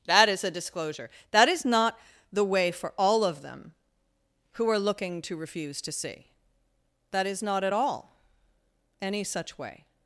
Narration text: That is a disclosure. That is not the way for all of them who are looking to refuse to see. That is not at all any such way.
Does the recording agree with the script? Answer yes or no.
yes